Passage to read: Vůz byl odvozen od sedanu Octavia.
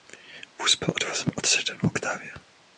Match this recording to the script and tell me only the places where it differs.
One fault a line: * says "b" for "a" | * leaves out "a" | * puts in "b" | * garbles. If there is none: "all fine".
all fine